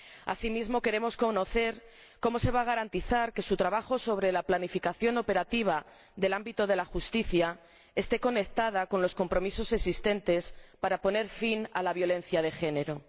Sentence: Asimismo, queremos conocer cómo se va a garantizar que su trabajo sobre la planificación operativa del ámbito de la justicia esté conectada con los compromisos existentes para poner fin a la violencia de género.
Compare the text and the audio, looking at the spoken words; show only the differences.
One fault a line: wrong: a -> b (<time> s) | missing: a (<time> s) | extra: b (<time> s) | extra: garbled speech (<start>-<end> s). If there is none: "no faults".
no faults